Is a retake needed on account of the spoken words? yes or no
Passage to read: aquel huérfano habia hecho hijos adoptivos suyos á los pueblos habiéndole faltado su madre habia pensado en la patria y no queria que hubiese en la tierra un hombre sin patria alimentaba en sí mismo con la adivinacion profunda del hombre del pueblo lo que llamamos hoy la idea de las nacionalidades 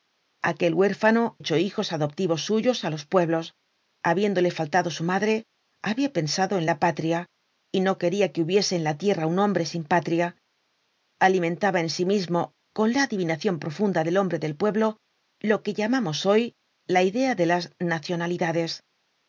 yes